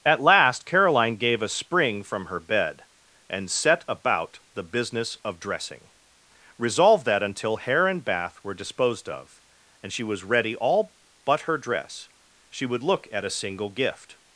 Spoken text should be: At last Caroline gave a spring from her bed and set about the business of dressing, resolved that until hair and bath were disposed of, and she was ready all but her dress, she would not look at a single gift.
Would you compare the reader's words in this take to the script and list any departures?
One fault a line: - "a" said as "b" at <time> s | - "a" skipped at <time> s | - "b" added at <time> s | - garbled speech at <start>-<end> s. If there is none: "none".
- "not" skipped at 12.8 s